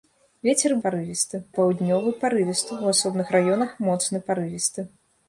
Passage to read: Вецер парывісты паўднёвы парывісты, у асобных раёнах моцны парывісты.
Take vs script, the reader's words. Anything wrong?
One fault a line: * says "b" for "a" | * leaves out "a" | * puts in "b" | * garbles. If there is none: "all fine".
all fine